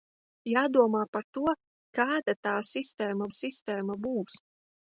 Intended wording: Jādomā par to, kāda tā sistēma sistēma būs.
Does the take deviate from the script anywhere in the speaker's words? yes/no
no